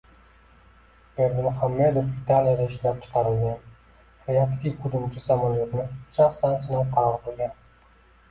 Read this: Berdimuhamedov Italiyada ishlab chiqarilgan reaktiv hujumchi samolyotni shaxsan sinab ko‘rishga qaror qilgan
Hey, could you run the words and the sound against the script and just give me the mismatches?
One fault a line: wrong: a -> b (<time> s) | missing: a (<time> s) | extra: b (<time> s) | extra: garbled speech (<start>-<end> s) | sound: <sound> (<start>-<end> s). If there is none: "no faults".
missing: ko‘rishga (6.9 s)